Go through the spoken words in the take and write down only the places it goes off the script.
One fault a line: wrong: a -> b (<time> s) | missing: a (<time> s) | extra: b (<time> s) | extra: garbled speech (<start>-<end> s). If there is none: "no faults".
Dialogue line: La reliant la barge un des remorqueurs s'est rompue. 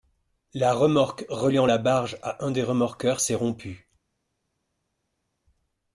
extra: remorque (0.7 s)
extra: à (2.2 s)